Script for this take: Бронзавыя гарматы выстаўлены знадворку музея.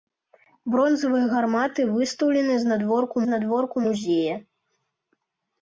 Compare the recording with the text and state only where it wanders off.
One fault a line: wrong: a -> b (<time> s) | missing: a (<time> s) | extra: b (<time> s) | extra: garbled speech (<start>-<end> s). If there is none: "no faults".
extra: знадворку (3.3 s)